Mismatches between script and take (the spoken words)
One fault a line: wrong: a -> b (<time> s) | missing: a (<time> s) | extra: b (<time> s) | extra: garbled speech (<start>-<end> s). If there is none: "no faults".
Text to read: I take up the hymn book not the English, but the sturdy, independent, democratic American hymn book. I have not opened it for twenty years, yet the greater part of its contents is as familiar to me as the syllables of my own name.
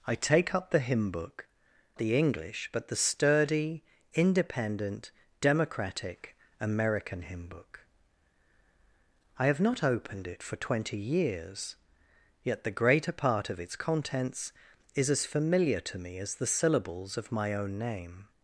missing: not (1.5 s)